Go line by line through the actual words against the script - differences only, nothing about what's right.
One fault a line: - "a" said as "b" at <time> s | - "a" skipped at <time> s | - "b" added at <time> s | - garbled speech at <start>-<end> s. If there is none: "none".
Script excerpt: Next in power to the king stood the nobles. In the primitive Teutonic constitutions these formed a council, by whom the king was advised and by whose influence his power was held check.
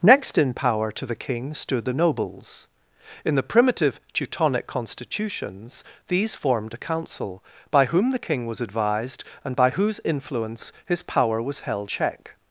none